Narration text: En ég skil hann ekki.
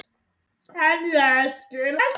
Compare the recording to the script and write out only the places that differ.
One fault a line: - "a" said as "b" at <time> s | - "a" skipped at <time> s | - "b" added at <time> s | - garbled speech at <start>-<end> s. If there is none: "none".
- "hann" skipped at 2.0 s